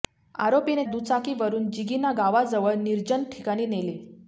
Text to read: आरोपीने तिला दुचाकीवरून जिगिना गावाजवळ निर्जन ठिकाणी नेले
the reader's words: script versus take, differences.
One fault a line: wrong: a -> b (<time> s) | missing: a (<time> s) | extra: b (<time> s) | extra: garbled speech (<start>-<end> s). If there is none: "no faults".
missing: तिला (0.8 s)